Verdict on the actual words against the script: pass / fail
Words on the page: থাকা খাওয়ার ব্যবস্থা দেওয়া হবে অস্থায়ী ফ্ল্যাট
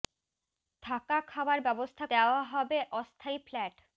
pass